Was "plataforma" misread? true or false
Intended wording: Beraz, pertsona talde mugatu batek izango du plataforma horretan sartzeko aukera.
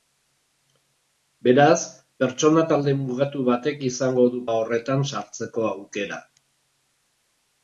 true